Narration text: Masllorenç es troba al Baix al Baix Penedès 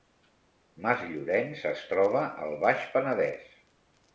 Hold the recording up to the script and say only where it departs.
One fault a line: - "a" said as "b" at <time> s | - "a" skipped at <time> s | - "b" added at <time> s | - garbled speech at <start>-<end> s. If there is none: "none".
- "al Baix" skipped at 2.9 s